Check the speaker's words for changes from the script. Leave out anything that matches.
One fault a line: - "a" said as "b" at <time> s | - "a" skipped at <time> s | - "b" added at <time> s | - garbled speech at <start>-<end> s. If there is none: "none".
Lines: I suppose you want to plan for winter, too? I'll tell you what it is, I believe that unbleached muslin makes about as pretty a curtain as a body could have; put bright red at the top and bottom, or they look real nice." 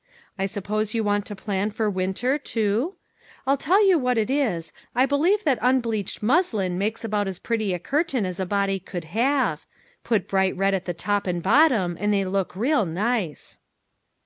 - "or" said as "and" at 12.0 s